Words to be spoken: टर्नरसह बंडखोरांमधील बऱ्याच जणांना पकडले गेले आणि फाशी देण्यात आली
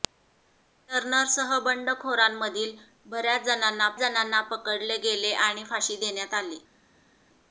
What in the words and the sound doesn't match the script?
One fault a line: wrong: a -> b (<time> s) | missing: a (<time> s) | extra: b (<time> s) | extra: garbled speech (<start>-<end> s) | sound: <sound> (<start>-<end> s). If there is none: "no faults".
extra: जणांना (4.0 s)